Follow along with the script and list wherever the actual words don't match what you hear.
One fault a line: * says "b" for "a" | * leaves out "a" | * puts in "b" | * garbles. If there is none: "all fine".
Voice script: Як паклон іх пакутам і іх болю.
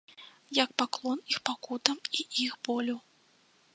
all fine